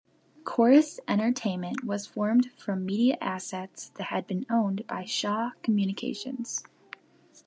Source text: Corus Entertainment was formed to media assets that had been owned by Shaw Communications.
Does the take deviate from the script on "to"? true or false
true